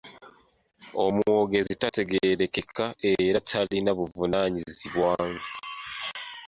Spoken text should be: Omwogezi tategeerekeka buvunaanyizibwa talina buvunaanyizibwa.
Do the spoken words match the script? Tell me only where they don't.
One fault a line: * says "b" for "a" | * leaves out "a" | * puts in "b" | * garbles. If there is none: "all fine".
* says "era" for "buvunaanyizibwa"